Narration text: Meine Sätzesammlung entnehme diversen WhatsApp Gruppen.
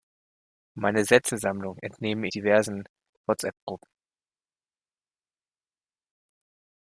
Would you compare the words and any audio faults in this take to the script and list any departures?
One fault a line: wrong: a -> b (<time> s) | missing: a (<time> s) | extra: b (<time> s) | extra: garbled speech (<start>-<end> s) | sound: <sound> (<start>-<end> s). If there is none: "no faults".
no faults